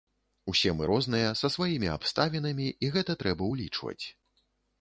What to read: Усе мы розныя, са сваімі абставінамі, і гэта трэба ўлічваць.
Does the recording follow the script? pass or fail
pass